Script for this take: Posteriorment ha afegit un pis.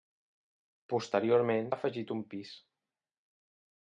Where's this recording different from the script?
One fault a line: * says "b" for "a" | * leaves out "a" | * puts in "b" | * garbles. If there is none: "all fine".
all fine